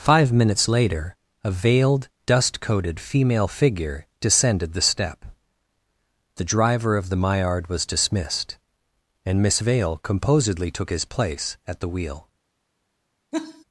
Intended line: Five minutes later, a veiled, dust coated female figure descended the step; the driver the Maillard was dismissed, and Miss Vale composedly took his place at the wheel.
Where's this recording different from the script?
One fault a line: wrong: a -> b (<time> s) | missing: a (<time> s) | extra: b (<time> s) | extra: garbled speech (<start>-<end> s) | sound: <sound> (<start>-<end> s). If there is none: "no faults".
extra: of (6.9 s)
sound: laugh (13.3-13.6 s)